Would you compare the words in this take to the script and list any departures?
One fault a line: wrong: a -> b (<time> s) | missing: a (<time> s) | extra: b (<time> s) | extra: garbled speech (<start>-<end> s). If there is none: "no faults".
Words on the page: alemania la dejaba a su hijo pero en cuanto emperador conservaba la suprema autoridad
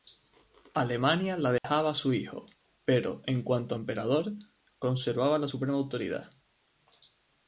no faults